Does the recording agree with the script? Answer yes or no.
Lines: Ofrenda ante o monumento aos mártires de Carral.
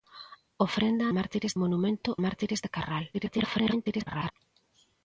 no